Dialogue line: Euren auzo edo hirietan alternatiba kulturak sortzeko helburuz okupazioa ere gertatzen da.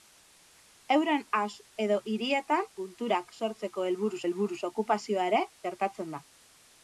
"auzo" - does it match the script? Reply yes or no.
no